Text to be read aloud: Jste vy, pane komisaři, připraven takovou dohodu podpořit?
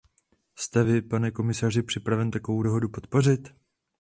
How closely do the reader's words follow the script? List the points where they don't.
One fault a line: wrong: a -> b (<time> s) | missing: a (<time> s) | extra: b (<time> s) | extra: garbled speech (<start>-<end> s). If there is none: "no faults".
no faults